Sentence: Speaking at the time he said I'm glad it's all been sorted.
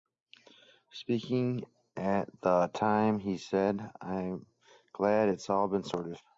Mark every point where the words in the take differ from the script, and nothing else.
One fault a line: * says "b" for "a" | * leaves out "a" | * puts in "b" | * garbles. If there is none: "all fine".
all fine